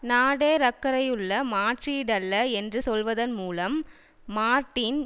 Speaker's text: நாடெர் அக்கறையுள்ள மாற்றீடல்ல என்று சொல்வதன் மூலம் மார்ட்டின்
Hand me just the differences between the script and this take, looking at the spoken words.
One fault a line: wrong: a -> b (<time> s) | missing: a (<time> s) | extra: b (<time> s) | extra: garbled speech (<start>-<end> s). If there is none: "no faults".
no faults